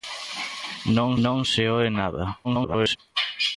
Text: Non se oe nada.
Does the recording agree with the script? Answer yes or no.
no